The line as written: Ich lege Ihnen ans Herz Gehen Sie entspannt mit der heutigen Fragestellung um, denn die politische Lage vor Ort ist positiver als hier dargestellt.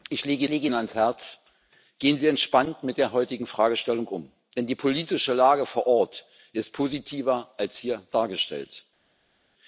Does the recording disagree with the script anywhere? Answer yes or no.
yes